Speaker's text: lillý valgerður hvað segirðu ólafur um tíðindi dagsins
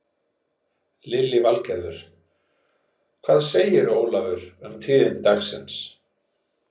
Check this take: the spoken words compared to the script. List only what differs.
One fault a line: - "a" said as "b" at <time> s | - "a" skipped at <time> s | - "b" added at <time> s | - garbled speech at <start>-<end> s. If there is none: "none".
none